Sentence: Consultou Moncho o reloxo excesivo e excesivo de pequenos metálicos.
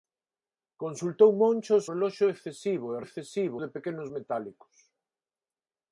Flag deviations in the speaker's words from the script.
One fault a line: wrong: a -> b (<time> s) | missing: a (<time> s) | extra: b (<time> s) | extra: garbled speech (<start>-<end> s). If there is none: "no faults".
no faults